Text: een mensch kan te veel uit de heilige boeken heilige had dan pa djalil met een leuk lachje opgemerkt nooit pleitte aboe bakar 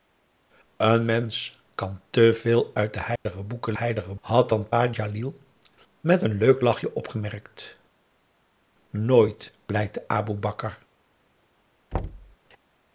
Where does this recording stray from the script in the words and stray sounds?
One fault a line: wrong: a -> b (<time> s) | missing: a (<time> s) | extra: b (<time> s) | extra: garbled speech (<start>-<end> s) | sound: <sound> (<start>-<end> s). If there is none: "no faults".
sound: dropout (3.2-3.3 s)
sound: thud (11.9-12.4 s)